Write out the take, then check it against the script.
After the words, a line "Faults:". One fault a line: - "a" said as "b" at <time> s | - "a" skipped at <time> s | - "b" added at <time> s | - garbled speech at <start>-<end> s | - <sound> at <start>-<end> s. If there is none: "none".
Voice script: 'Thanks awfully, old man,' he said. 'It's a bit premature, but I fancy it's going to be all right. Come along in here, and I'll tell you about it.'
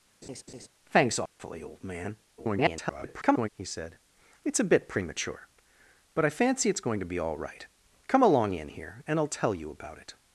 'Thanks awfully, old man,' [garbled] he said. 'It's a bit premature, but I fancy it's going to be all right. Come along in here, and I'll tell you about it.'
Faults:
- laugh at 0.2-0.7 s
- dropout at 1.3-1.4 s
- garbled speech at 2.4-3.5 s